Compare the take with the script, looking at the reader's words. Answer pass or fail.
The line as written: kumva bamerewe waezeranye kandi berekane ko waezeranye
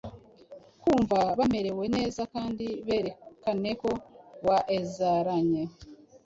fail